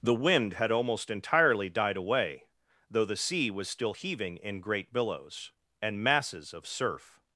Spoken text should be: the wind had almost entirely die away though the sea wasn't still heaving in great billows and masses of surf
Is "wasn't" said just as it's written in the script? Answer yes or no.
no